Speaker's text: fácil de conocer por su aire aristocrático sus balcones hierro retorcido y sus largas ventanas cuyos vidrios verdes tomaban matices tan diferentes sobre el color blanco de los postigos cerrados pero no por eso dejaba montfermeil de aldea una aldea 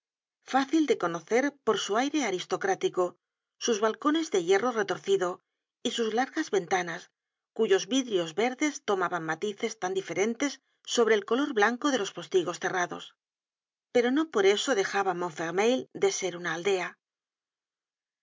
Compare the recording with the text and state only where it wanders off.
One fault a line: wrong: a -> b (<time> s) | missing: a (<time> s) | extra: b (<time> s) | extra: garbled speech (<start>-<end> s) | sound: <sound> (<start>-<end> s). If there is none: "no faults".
extra: de (4.3 s)
wrong: aldea -> ser (16.1 s)